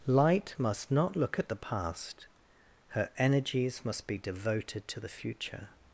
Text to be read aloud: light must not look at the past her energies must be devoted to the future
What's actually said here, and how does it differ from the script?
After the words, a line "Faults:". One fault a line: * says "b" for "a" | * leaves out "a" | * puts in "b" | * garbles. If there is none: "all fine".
light must not look at the past her energies must be devoted to the future
Faults:
all fine